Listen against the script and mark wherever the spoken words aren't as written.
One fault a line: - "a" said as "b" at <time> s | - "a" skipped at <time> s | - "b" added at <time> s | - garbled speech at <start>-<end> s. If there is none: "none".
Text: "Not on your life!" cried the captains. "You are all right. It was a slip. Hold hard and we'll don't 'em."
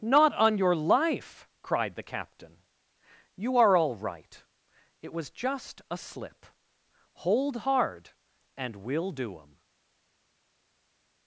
- "captains" said as "captain" at 2.0 s
- "just" added at 5.3 s
- "don't" said as "do" at 9.1 s